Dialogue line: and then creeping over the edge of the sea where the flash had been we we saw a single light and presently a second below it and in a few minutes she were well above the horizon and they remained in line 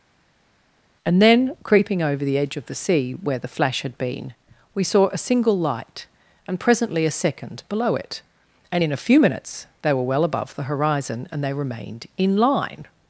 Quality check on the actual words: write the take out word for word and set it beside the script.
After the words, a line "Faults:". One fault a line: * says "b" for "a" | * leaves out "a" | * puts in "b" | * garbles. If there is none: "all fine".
and then creeping over the edge of the sea where the flash had been we saw a single light and presently a second below it and in a few minutes they were well above the horizon and they remained in line
Faults:
* leaves out "we"
* says "they" for "she"